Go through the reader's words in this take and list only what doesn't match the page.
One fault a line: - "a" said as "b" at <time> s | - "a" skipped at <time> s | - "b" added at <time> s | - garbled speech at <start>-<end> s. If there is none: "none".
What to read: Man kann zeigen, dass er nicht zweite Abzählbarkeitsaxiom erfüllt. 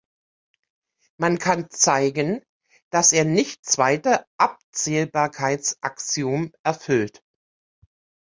none